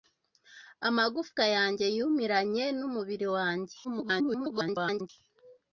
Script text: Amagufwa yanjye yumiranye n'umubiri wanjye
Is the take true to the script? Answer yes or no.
no